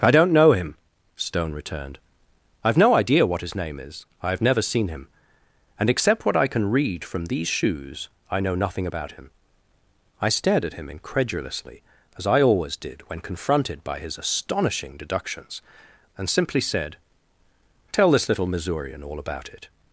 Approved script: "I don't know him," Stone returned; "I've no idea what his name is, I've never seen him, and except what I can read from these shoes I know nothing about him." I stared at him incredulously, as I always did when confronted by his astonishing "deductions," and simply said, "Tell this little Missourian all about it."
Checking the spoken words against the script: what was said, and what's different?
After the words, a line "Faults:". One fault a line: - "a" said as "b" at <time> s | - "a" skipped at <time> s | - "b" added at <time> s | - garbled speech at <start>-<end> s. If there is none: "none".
"I don't know him," Stone returned; "I've no idea what his name is, I've never seen him, and except what I can read from these shoes I know nothing about him." I stared at him incredulously, as I always did when confronted by his astonishing "deductions," and simply said, "Tell this little Missourian all about it."
Faults:
none